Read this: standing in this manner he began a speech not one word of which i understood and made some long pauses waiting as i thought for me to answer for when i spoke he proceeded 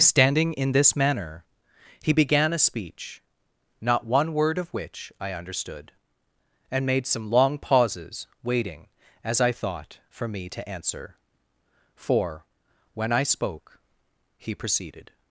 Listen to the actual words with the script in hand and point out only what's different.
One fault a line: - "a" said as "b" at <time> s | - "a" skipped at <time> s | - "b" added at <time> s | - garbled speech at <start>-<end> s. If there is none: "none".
none